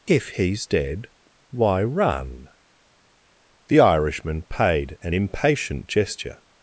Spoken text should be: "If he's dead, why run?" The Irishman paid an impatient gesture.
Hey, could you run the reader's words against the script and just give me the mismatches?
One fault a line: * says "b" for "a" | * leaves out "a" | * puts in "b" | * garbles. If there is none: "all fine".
all fine